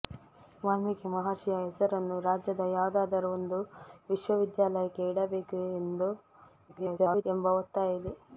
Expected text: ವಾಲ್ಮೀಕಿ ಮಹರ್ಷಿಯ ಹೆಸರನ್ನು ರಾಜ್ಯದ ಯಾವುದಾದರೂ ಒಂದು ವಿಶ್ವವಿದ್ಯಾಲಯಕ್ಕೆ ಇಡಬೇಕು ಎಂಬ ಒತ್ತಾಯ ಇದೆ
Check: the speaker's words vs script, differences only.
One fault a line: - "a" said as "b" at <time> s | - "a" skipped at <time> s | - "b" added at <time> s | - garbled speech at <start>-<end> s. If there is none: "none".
- garbled speech at 6.7-7.2 s